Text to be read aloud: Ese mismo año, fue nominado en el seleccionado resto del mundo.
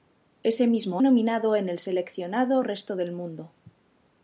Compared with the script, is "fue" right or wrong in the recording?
wrong